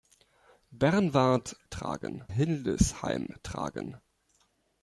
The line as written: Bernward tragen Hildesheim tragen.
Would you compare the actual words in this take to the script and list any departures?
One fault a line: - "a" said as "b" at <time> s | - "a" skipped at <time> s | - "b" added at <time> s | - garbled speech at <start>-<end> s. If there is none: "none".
none